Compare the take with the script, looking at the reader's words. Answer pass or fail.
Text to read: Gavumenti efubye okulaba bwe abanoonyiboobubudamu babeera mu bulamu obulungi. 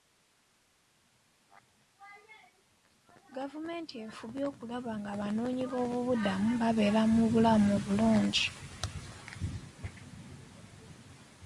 fail